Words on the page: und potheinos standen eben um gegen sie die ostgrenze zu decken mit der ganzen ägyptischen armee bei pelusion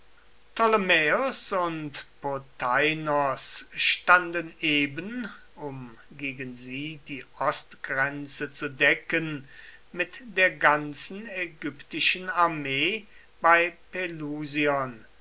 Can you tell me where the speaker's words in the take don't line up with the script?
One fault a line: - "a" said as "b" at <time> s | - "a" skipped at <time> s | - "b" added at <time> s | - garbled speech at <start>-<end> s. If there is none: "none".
none